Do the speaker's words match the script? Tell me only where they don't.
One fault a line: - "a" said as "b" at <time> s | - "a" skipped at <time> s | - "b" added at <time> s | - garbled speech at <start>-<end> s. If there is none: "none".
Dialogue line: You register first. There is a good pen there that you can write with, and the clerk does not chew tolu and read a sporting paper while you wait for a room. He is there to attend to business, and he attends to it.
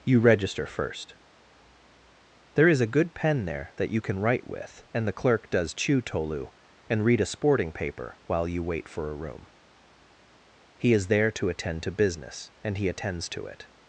- "not" skipped at 5.7 s